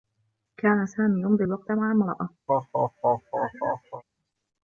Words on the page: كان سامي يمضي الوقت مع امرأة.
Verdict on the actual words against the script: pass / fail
pass